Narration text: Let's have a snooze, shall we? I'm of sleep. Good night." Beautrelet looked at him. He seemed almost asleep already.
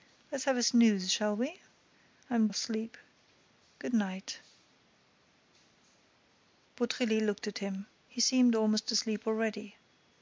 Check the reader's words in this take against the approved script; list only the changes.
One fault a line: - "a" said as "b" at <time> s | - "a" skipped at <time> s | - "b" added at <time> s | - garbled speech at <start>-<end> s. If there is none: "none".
none